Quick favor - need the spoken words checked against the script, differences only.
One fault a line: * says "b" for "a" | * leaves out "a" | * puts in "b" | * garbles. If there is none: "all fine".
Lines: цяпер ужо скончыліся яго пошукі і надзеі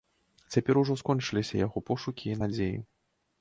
all fine